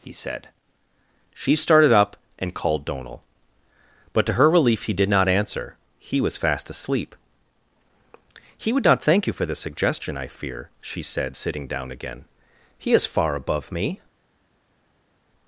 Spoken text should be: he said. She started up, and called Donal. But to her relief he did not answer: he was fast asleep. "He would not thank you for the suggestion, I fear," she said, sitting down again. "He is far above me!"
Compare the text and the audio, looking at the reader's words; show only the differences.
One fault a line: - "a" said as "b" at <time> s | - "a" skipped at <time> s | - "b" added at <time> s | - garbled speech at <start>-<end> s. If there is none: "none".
none